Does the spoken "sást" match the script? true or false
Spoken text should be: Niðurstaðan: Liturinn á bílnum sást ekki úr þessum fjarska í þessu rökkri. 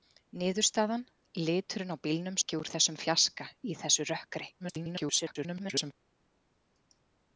false